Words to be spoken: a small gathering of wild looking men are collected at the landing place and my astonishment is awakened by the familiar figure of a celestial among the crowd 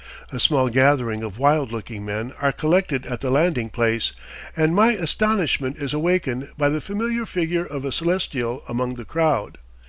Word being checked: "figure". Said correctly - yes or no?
yes